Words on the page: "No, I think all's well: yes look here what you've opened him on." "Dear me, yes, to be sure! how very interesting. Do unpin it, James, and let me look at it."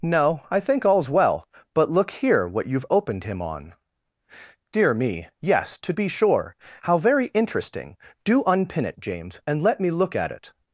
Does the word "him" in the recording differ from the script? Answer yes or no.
no